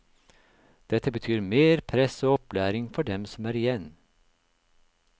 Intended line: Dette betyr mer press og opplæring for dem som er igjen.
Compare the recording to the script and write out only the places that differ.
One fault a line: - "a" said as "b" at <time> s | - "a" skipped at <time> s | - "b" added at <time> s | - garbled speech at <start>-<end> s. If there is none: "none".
none